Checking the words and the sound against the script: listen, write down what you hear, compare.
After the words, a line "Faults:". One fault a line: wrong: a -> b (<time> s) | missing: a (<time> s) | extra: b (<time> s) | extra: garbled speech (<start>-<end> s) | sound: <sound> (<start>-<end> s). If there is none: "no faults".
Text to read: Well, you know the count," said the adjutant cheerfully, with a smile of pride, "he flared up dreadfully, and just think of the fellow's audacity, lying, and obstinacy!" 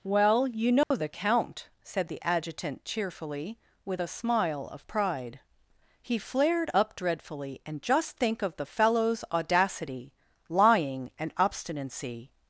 Well, you know the count," said the adjutant cheerfully, with a smile of pride, "he flared up dreadfully, and just think of the fellow's audacity, lying, and obstinacy!"
Faults:
sound: dropout (0.8-0.9 s)